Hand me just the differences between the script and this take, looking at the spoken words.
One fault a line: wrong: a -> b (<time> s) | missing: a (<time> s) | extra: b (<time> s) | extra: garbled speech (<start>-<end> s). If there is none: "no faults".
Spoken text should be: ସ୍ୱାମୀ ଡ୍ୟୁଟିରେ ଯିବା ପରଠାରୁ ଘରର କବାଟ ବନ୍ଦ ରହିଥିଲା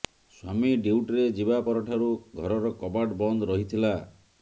no faults